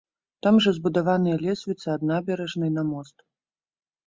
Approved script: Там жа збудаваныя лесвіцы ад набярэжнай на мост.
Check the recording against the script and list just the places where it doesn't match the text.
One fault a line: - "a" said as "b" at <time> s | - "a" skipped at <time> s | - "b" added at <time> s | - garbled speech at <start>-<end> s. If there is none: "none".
none